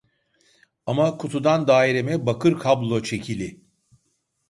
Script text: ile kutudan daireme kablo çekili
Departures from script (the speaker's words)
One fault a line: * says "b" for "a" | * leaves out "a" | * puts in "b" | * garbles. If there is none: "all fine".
* says "ama" for "ile"
* puts in "bakır"